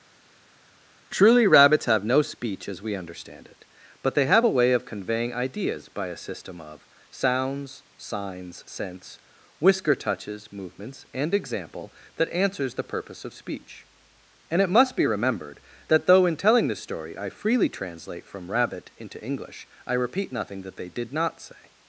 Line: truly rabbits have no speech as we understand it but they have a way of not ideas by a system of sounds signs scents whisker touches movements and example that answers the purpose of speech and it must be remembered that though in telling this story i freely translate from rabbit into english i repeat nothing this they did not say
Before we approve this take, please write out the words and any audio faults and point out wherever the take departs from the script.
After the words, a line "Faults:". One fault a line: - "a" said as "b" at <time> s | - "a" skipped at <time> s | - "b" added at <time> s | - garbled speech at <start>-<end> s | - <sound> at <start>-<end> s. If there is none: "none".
truly rabbits have no speech as we understand it but they have a way of conveying ideas by a system of sounds signs scents whisker touches movements and example that answers the purpose of speech and it must be remembered that though in telling this story i freely translate from rabbit into english i repeat nothing that they did not say
Faults:
- "not" said as "conveying" at 4.8 s
- "this" said as "that" at 20.6 s